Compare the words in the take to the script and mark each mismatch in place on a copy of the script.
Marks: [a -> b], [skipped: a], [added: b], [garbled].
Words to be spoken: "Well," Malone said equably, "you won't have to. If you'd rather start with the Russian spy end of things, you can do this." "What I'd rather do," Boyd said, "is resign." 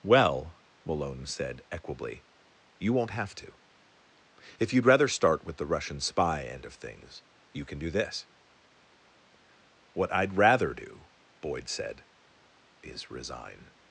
"Well," Malone said equably, "you won't have to. If you'd rather start with the Russian spy end of things, you can do this." "What I'd rather do," Boyd said, "is resign."